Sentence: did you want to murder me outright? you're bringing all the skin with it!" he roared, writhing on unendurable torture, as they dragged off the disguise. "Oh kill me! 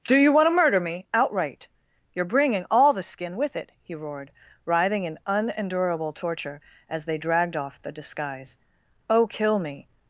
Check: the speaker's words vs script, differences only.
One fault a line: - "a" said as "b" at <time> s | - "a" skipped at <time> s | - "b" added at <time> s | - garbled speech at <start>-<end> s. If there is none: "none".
- "did" said as "do" at 0.0 s
- "on" said as "in" at 5.0 s